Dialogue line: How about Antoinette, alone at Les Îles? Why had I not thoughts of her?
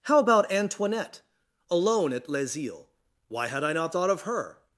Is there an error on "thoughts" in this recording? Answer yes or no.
yes